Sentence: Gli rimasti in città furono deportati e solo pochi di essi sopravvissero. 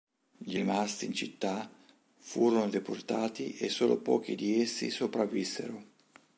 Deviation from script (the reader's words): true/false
false